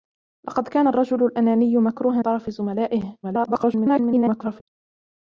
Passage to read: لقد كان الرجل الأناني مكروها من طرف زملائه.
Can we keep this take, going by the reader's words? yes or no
no